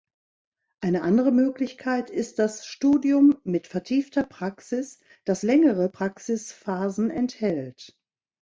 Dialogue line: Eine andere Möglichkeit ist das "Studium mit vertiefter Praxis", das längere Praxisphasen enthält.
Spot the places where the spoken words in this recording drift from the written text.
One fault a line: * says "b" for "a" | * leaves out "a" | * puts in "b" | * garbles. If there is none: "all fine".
all fine